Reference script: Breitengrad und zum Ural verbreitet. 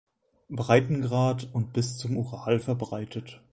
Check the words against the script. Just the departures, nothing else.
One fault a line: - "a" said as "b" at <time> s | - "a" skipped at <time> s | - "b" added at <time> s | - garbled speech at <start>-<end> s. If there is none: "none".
- "bis" added at 1.7 s